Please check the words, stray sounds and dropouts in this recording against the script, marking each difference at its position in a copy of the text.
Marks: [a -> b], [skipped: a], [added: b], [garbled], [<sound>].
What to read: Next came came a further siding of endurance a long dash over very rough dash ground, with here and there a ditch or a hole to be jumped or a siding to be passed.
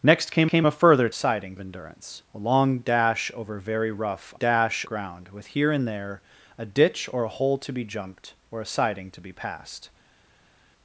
Next came came a further siding of endurance a long dash over very rough dash ground, with here and there a ditch or a hole to be jumped or a siding to be passed.